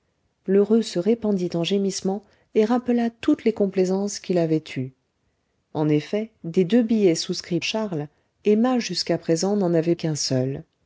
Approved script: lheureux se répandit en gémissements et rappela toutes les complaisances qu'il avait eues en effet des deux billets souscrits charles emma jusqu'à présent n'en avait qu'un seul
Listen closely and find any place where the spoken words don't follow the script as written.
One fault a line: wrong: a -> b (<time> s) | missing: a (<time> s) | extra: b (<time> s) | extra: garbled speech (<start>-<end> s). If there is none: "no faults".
no faults